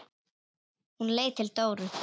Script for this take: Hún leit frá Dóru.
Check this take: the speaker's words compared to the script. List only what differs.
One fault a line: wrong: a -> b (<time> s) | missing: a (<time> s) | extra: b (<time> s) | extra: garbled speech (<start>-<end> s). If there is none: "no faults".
wrong: frá -> til (1.4 s)